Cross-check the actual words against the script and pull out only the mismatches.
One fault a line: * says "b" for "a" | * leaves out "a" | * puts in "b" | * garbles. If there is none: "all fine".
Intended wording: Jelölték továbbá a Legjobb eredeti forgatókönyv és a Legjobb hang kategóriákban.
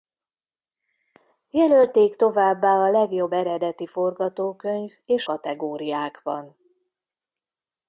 * leaves out "a Legjobb hang"